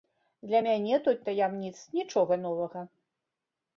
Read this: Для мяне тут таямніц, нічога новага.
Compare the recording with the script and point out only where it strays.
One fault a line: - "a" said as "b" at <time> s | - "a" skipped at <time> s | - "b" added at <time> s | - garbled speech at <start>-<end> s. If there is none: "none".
none